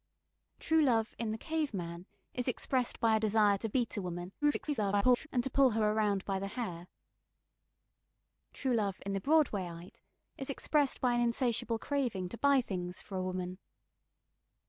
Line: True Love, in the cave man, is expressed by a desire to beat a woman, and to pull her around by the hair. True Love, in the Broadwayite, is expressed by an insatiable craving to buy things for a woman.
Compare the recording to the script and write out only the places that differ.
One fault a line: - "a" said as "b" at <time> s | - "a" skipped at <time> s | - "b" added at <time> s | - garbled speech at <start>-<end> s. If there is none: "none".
- garbled speech at 4.4-5.3 s